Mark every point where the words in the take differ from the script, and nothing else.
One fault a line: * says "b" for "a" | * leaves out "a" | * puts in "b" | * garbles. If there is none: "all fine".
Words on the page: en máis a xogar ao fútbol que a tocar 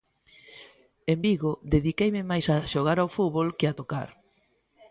* puts in "vigo dediqueime"